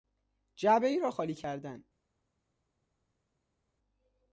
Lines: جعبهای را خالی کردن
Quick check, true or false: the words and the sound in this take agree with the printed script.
true